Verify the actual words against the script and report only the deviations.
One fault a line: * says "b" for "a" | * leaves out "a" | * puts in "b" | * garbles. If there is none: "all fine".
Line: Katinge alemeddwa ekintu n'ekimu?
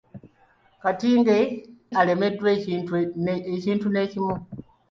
all fine